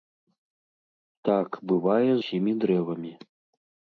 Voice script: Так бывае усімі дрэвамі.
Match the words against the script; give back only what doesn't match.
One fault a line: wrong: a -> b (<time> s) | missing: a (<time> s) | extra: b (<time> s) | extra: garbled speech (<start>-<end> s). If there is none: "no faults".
no faults